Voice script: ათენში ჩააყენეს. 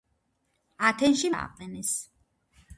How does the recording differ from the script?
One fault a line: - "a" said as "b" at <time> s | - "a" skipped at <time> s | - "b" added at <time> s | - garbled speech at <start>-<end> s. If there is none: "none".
none